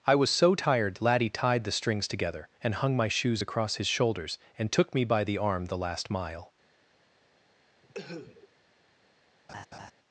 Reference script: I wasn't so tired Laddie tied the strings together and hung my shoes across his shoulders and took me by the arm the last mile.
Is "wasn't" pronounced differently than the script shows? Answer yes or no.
yes